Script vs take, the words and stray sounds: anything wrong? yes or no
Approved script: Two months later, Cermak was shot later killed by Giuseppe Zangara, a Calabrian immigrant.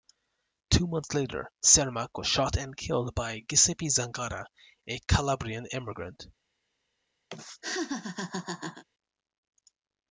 yes